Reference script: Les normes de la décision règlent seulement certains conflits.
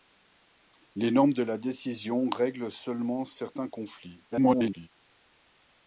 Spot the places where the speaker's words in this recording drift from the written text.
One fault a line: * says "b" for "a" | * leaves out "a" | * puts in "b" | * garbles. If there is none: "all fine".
* garbles